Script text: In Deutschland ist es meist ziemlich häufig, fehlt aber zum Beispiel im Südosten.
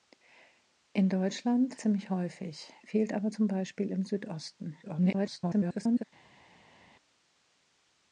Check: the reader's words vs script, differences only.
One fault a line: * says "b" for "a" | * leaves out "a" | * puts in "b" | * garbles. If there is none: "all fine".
* leaves out "ist es meist"
* garbles